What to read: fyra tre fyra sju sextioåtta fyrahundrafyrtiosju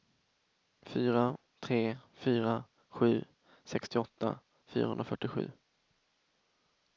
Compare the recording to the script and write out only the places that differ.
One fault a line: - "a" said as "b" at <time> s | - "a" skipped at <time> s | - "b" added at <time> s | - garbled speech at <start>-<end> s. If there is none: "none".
none